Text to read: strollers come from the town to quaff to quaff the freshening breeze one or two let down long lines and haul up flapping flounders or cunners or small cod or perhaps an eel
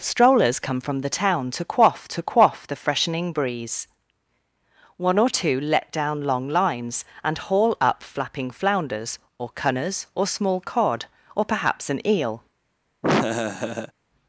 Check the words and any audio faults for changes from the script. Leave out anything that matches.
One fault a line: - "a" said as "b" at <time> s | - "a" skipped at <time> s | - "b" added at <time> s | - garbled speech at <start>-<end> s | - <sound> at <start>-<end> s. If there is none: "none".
- laugh at 13.0-13.9 s